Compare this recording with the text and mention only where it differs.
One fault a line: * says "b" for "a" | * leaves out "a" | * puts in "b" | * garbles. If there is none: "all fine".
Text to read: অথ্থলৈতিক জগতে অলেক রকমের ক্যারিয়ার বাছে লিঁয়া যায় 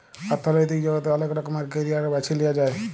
all fine